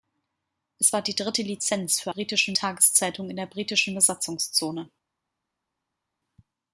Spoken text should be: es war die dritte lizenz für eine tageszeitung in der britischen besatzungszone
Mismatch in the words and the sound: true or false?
true